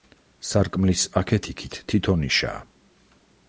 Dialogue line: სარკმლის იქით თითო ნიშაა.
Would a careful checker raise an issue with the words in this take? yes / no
yes